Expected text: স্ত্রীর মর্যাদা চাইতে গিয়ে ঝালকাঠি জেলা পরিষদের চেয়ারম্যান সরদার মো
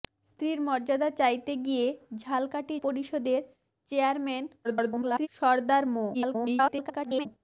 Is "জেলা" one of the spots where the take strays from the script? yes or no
yes